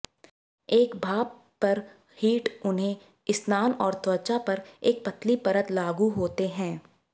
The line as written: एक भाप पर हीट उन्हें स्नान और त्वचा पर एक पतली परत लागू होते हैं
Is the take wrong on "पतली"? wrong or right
right